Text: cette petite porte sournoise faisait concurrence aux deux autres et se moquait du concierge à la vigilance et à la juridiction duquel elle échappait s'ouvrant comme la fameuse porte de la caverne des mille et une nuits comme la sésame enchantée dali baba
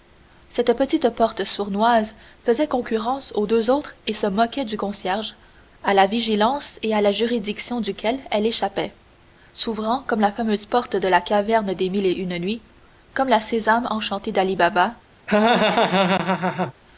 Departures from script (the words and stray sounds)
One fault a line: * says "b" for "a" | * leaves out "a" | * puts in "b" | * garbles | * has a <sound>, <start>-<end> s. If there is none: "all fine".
* has a laugh, 15.3-16.7 s